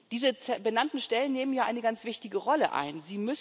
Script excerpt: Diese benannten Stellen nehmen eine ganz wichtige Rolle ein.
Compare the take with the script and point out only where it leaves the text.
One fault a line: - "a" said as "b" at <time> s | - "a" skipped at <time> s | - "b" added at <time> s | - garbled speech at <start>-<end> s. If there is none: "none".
- "ja" added at 1.5 s